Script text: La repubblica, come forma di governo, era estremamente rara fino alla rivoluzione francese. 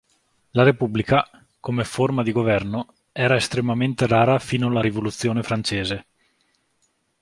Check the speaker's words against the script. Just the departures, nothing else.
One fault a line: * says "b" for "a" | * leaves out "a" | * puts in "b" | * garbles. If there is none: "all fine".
all fine